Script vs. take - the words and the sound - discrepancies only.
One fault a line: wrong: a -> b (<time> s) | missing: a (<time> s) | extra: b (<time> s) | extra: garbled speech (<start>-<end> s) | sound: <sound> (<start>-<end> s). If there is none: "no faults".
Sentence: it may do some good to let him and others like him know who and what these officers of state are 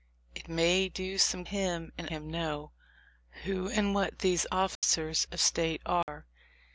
missing: good to let (1.4 s)
missing: others like (2.1 s)
sound: dropout (4.7-4.8 s)
sound: dropout (6.0-6.1 s)